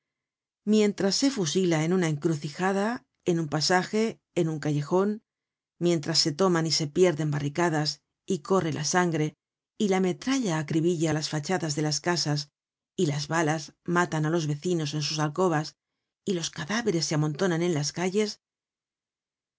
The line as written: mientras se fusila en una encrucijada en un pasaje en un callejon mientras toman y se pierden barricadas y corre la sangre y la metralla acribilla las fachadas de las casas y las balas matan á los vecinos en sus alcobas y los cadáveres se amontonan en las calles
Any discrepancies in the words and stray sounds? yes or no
yes